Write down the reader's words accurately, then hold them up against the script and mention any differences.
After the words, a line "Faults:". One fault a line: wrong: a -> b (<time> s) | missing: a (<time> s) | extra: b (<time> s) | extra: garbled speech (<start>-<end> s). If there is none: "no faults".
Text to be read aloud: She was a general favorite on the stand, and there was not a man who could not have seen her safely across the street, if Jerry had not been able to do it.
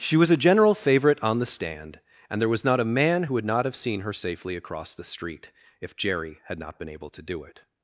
She was a general favorite on the stand, and there was not a man who would not have seen her safely across the street, if Jerry had not been able to do it.
Faults:
wrong: could -> would (3.3 s)